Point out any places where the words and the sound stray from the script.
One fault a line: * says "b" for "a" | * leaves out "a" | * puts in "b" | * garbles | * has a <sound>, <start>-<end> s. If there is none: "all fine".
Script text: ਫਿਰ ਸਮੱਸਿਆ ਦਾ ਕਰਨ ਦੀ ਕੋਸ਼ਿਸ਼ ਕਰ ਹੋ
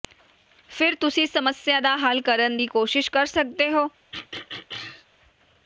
* puts in "ਤੁਸੀਂ"
* puts in "ਹੱਲ"
* puts in "ਸਕਦੇ"
* has a throat clearing, 4.1-5.1 s